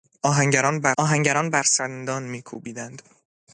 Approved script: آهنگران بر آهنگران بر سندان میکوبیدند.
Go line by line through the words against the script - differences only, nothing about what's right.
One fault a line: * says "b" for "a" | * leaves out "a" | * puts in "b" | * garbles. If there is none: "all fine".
all fine